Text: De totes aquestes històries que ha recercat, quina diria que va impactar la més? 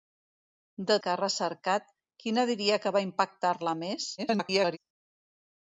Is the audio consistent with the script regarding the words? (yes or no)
no